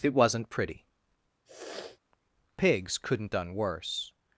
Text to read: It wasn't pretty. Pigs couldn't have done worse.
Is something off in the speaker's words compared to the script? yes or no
yes